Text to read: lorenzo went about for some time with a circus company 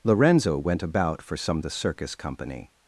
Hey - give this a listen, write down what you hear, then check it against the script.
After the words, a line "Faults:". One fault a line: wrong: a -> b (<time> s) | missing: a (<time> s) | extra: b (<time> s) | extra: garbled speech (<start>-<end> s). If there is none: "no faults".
lorenzo went about for some a circus company
Faults:
missing: time with (1.6 s)